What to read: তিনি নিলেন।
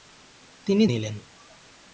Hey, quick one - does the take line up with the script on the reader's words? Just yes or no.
yes